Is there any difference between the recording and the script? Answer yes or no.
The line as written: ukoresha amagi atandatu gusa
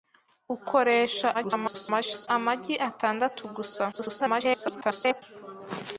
yes